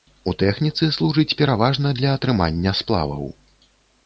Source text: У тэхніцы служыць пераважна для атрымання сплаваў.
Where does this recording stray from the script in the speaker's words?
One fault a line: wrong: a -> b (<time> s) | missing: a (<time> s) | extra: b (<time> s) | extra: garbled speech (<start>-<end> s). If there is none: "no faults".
no faults